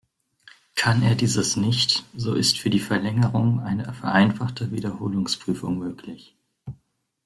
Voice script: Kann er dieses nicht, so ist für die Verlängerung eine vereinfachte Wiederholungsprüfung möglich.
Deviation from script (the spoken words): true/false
false